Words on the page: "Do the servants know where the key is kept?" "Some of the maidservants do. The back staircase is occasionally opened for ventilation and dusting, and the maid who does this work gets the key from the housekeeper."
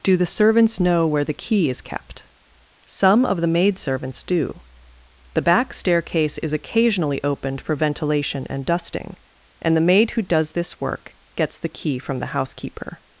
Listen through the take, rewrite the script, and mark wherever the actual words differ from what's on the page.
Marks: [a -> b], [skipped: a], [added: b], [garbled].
"Do the servants know where the key is kept?" "Some of the maidservants do. The back staircase is occasionally opened for ventilation and dusting, and the maid who does this work gets the key from the housekeeper."